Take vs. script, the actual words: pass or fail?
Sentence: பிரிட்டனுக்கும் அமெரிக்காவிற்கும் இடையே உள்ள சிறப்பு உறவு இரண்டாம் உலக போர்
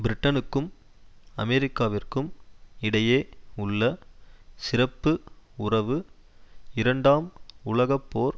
pass